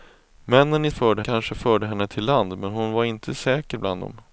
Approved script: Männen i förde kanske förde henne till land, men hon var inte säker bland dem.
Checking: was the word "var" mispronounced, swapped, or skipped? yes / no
no